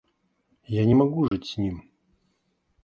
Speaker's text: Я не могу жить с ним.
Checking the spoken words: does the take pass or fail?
pass